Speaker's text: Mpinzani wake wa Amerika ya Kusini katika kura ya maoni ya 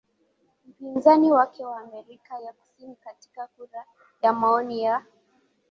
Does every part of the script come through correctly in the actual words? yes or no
yes